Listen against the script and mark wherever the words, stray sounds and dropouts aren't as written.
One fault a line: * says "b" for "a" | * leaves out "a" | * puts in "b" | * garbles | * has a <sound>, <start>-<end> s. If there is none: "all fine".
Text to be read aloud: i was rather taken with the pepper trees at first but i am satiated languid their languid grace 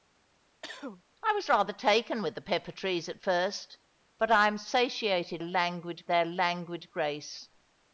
* has a cough, 0.6-1.0 s